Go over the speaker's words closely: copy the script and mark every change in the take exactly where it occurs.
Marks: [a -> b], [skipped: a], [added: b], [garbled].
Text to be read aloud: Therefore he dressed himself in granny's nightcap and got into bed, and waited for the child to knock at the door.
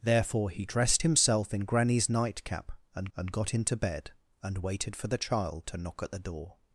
Therefore he dressed himself in granny's nightcap and [added: and] got into bed, and waited for the child to knock at the door.